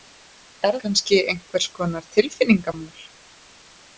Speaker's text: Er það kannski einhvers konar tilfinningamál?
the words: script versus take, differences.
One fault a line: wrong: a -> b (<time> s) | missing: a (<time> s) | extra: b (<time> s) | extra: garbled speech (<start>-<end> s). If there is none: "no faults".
missing: það (0.8 s)